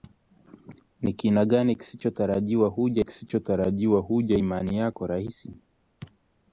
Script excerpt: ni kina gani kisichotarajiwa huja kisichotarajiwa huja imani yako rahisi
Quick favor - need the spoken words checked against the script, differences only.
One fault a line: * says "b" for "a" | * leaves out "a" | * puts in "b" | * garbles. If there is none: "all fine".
all fine